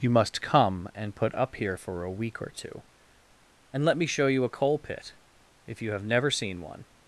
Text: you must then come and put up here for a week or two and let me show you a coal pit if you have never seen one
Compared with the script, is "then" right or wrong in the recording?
wrong